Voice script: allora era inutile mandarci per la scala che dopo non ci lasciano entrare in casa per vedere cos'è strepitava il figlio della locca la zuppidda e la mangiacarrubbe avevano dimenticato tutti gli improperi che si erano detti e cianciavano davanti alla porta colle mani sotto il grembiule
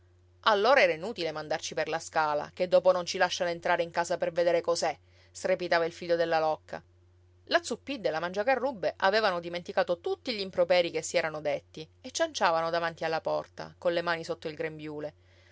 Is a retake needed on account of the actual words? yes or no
no